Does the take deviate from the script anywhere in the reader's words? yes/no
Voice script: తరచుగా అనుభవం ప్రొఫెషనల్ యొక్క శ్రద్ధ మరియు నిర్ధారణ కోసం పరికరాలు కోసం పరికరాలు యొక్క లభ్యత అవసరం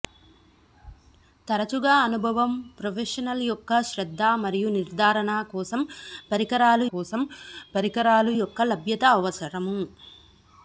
no